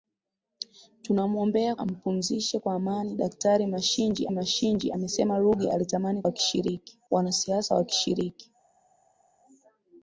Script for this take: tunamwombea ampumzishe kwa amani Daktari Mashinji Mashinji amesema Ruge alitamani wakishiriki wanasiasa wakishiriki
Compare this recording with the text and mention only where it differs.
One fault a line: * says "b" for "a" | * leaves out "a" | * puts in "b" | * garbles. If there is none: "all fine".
all fine